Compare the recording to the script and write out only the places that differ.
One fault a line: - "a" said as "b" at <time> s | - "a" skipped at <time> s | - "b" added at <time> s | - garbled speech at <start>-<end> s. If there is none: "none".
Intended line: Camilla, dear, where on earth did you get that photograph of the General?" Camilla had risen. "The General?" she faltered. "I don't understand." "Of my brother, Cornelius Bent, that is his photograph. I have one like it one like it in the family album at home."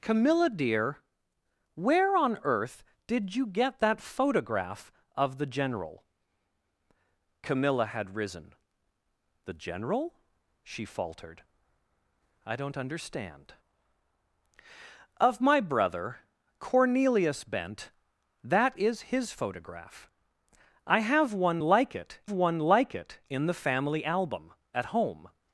none